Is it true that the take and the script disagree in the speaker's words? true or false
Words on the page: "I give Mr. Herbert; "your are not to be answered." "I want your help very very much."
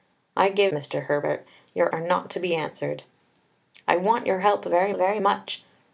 false